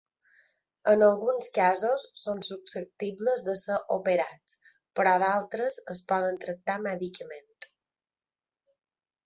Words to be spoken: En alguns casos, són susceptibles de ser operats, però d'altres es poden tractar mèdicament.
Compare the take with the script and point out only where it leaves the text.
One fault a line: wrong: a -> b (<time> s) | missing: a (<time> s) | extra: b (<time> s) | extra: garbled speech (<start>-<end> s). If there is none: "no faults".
no faults